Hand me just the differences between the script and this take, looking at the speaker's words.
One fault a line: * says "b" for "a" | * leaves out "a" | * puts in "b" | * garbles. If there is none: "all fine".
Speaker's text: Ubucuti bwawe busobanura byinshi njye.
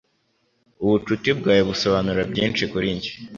* puts in "kuri"